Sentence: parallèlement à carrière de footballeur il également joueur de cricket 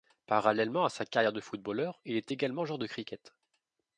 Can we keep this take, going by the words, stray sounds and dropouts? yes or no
no